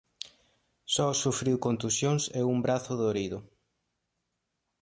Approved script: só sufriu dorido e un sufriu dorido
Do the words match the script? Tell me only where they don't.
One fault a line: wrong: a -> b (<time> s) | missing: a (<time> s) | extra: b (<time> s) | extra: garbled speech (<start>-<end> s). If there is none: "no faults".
wrong: dorido -> contusións (1.6 s)
wrong: sufriu -> brazo (2.6 s)